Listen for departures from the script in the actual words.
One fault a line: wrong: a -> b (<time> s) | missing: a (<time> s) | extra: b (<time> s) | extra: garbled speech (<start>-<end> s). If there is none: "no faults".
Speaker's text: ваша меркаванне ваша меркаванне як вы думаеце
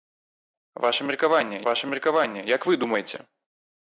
no faults